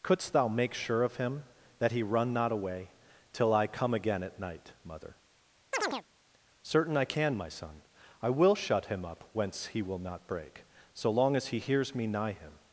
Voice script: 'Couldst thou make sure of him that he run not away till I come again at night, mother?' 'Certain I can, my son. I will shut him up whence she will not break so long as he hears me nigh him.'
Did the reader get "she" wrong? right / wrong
wrong